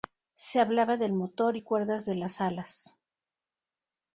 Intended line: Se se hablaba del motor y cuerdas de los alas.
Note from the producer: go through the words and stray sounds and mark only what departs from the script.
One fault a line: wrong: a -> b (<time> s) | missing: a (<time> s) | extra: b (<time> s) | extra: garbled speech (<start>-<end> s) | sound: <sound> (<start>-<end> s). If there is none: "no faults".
missing: se (0.6 s)
wrong: los -> las (2.1 s)